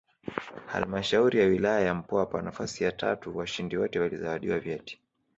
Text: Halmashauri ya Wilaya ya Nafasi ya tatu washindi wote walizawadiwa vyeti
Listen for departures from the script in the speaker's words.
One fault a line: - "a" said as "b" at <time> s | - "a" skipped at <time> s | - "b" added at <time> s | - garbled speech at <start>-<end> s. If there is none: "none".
- "Mpwapwa" added at 1.9 s